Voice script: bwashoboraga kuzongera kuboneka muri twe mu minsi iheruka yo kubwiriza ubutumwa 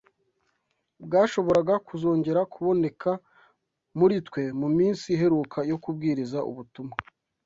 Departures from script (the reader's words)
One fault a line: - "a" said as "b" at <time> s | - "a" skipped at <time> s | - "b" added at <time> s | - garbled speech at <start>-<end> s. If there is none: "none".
none